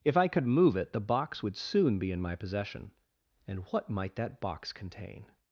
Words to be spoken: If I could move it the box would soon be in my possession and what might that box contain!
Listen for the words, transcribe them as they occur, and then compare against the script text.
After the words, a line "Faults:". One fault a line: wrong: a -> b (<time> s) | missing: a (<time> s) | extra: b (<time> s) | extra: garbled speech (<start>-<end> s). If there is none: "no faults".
If I could move it the box would soon be in my possession and what might that box contain!
Faults:
no faults